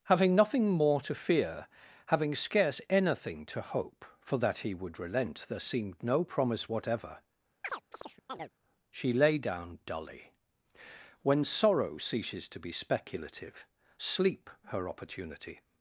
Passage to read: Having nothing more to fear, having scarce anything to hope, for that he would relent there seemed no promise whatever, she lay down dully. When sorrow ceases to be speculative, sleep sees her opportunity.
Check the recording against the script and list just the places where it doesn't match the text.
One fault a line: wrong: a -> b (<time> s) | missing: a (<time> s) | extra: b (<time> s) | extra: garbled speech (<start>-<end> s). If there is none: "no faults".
missing: sees (14.5 s)